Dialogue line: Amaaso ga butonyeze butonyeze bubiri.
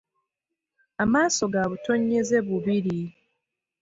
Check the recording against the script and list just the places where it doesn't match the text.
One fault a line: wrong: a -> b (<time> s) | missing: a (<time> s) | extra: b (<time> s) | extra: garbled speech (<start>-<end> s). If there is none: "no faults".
missing: butonyeze (2.4 s)